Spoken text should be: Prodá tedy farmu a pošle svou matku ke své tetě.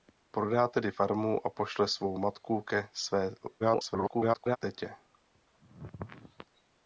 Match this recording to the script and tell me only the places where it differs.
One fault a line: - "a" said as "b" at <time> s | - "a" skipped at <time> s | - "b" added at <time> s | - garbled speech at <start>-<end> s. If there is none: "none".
- garbled speech at 3.6-4.6 s